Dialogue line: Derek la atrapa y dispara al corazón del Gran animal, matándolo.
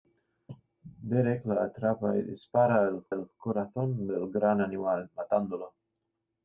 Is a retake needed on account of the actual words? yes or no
yes